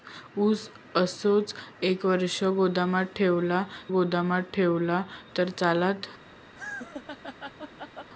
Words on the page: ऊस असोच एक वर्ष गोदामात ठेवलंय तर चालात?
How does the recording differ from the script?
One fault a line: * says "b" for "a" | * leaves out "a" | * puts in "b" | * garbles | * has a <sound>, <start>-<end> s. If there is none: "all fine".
* puts in "गोदामात ठेवलंय"
* has a laugh, 6.5-8.1 s